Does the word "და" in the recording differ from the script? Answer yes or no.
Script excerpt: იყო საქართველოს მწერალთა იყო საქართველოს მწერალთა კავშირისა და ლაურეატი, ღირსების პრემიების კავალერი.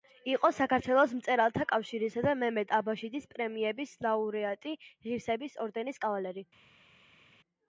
yes